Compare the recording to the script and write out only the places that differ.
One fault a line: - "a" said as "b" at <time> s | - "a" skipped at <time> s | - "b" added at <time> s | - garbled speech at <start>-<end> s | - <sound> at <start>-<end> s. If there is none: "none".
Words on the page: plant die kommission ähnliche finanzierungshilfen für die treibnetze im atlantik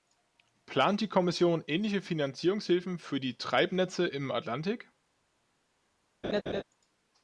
- laugh at 6.2-6.6 s